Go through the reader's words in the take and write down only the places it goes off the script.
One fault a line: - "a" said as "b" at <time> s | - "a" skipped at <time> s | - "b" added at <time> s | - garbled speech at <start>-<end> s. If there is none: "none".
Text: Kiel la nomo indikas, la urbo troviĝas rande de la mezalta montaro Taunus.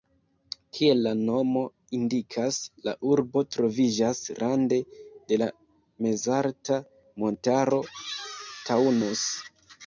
none